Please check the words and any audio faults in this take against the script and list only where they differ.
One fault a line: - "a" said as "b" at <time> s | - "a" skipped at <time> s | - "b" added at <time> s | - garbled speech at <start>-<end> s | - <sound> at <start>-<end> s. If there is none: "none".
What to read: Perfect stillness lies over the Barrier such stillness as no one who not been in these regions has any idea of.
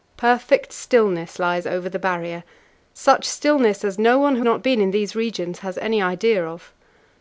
none